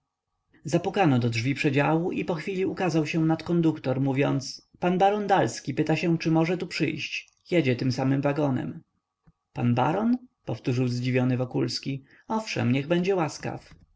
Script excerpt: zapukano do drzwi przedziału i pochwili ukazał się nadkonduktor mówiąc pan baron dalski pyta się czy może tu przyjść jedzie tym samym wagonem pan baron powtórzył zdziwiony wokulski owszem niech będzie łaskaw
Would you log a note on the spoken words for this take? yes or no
no